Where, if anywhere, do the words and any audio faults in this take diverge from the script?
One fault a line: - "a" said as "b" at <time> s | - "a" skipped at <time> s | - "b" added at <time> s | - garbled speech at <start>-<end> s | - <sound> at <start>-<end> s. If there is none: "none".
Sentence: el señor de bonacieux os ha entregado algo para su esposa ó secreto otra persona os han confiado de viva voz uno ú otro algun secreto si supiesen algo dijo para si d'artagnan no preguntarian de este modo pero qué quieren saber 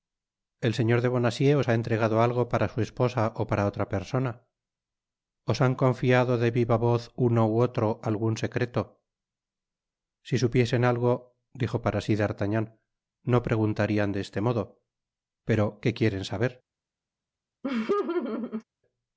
- "secreto" said as "para" at 3.5 s
- laugh at 17.6-18.6 s